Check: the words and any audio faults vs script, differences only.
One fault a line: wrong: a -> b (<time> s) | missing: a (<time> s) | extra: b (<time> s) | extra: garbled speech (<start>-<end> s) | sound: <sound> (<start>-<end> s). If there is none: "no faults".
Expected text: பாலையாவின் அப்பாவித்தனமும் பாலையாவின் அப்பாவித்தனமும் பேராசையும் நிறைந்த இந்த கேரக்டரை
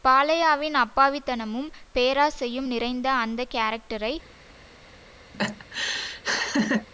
missing: பாலையாவின் அப்பாவித்தனமும் (1.7 s)
wrong: இந்த -> அந்த (3.1 s)
sound: laugh (5.3-6.9 s)